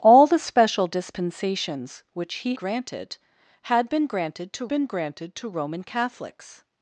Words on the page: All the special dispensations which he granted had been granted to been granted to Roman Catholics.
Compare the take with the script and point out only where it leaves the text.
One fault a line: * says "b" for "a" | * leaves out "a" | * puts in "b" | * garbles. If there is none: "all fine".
all fine